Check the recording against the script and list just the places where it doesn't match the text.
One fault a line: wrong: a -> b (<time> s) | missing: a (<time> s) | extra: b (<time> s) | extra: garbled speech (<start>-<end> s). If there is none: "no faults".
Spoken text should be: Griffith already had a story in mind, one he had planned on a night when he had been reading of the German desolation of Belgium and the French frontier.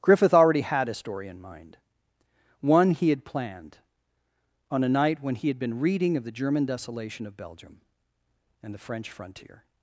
no faults